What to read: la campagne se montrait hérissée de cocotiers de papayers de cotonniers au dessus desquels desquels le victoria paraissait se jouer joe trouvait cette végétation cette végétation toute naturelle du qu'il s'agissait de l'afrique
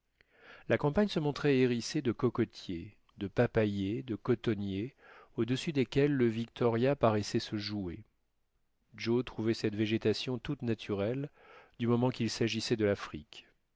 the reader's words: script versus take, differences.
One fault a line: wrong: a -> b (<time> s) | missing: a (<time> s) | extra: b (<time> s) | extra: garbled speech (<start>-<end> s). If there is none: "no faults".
missing: desquels (6.1 s)
missing: cette végétation (10.4 s)
extra: moment (11.9 s)